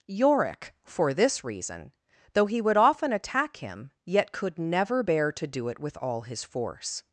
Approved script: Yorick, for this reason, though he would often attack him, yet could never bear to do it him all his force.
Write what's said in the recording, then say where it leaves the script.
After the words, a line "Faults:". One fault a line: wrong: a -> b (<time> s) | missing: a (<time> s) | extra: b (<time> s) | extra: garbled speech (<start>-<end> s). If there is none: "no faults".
Yorick, for this reason, though he would often attack him, yet could never bear to do it with all his force.
Faults:
wrong: him -> with (5.8 s)